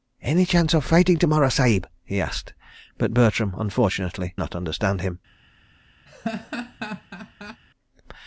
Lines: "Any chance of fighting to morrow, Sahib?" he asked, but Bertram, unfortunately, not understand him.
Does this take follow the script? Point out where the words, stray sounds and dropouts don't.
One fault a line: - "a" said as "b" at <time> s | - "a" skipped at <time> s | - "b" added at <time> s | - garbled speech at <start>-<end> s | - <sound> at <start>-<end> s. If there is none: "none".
- laugh at 6.1-7.6 s